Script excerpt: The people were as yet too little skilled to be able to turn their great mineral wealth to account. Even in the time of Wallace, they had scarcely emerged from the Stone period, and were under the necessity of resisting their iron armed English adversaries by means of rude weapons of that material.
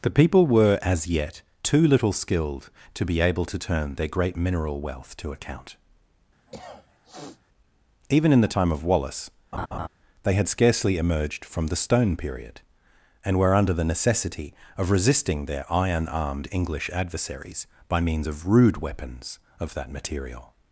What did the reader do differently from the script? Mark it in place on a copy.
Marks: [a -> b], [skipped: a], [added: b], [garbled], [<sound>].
The people were as yet too little skilled to be able to turn their great mineral wealth to account. [cough] Even in the time of Wallace, [laugh] they had scarcely emerged from the Stone period, and were under the necessity of resisting their iron armed English adversaries by means of rude weapons of that material.